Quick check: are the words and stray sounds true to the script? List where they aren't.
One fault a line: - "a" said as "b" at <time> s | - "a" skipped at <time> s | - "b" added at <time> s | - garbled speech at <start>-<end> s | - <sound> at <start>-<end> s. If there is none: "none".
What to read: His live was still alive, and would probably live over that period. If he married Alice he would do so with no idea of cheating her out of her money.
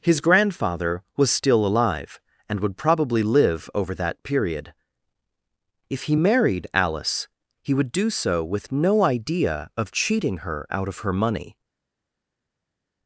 - "live" said as "grandfather" at 0.2 s